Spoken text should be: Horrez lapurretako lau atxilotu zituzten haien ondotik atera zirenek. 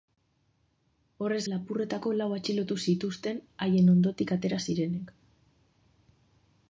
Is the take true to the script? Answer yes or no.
yes